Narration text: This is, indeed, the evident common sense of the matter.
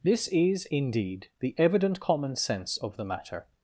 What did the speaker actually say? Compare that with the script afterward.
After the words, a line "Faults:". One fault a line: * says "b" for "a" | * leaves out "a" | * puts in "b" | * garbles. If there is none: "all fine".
This is, indeed, the evident common sense of the matter.
Faults:
all fine